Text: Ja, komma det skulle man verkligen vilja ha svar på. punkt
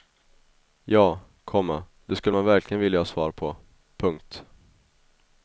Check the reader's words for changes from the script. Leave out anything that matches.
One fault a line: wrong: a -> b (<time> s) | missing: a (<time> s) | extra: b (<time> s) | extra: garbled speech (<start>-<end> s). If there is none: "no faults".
no faults